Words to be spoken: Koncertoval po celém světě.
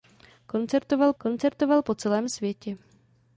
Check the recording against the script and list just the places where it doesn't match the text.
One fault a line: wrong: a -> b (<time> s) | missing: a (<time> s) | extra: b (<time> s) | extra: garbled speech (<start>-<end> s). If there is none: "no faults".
extra: koncertoval (1.2 s)